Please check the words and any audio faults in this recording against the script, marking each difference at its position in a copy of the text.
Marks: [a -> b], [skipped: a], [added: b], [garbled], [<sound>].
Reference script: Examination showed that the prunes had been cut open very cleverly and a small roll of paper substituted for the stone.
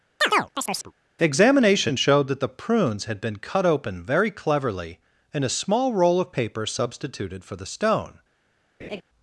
[chirp] Examination showed that the prunes had been cut open very cleverly and a small roll of paper substituted for the stone. [laugh]